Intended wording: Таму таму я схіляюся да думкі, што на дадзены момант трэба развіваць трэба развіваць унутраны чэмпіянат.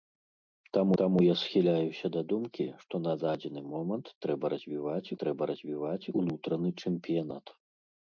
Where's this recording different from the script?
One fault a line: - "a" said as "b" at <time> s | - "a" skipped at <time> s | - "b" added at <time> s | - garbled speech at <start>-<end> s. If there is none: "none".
none